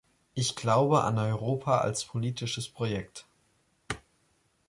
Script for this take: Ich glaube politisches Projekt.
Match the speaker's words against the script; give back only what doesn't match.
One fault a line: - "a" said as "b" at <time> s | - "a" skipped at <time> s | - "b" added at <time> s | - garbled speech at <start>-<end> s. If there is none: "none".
- "an Europa als" added at 1.0 s